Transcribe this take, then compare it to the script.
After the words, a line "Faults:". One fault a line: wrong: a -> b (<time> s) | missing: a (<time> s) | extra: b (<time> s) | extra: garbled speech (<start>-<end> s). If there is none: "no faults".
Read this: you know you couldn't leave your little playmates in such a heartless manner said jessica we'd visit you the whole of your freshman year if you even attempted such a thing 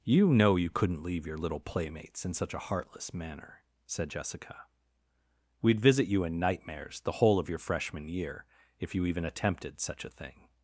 you know you couldn't leave your little playmates in such a heartless manner said jessica we'd visit you in nightmares the whole of your freshman year if you even attempted such a thing
Faults:
extra: in nightmares (6.2 s)